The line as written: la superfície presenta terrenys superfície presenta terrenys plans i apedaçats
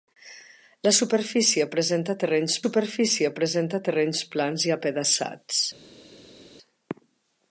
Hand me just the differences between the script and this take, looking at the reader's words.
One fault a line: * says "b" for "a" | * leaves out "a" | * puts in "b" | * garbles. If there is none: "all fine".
all fine